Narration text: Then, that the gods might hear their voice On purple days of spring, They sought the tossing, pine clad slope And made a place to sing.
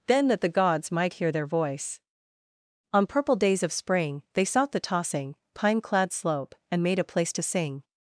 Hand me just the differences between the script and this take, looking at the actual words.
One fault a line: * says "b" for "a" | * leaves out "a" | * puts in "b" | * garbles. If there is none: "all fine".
all fine